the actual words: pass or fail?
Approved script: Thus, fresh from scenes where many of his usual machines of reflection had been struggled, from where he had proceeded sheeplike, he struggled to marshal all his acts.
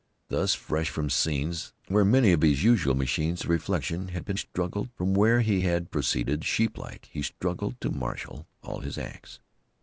pass